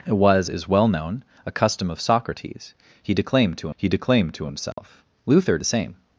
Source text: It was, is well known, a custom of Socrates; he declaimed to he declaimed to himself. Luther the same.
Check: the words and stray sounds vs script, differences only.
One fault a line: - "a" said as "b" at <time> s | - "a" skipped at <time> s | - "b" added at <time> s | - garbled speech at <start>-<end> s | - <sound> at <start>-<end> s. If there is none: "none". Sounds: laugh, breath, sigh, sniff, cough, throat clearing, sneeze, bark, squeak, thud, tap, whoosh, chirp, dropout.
- dropout at 4.7-4.8 s